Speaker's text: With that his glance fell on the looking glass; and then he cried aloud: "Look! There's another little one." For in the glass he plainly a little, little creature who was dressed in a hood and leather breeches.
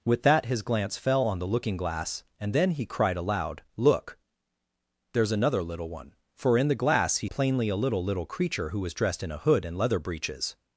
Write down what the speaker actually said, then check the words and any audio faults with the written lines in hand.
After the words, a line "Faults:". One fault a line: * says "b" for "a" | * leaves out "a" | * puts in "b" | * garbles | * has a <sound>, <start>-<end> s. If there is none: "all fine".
With that his glance fell on the looking glass; and then he cried aloud: "Look! There's another little one." For in the glass he plainly a little, little creature who was dressed in a hood and leather breeches.
Faults:
all fine